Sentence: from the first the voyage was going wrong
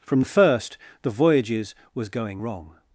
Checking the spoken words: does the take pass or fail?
fail